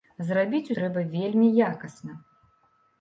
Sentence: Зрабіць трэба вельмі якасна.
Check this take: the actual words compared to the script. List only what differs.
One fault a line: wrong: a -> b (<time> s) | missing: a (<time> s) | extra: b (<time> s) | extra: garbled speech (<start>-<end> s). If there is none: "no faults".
no faults